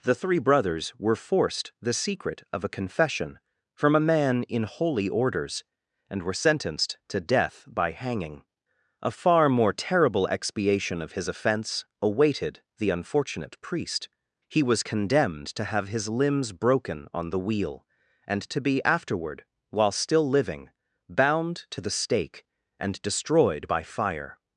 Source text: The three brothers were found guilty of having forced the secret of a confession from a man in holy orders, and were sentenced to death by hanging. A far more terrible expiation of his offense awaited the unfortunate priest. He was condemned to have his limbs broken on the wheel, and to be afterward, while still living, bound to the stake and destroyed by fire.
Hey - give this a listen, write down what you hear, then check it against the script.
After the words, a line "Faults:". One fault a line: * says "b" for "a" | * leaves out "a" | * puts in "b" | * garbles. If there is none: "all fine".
The three brothers were forced the secret of a confession from a man in holy orders, and were sentenced to death by hanging. A far more terrible expiation of his offense awaited the unfortunate priest. He was condemned to have his limbs broken on the wheel, and to be afterward, while still living, bound to the stake and destroyed by fire.
Faults:
* leaves out "found guilty of having"